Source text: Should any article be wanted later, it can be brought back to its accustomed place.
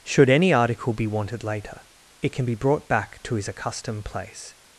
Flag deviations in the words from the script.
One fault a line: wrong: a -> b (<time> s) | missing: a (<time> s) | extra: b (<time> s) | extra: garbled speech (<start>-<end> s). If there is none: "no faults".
wrong: its -> his (3.4 s)